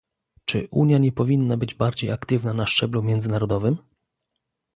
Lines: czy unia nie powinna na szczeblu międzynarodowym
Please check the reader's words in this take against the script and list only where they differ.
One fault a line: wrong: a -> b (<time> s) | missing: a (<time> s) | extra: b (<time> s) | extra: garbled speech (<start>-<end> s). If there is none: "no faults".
extra: być bardziej aktywna (1.6 s)